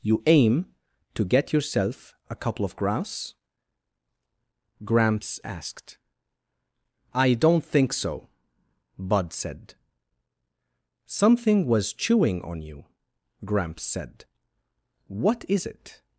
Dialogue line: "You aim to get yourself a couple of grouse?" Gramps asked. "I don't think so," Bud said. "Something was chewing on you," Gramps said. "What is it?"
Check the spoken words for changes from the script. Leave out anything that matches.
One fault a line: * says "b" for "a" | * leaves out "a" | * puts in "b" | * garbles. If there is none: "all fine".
all fine